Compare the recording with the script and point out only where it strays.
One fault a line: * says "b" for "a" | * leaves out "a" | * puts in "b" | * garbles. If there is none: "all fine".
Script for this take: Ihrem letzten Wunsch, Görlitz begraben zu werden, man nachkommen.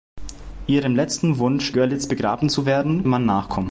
all fine